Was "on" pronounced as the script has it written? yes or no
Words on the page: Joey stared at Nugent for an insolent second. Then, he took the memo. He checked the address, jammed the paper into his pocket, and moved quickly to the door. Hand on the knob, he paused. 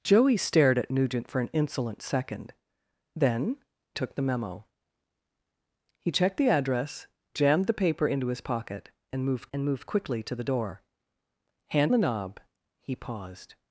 no